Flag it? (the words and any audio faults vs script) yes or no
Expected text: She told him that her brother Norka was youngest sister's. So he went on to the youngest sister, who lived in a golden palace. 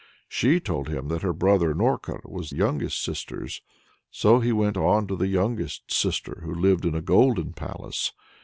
no